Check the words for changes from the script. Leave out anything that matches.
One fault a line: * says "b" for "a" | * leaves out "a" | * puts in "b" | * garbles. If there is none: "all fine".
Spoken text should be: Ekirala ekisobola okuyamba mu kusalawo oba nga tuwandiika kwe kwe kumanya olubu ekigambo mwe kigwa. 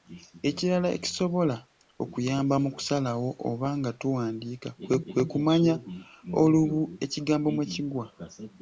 all fine